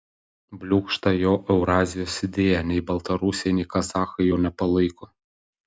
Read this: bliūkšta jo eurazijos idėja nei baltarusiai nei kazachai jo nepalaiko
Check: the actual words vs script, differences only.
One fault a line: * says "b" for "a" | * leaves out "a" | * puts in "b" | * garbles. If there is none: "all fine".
all fine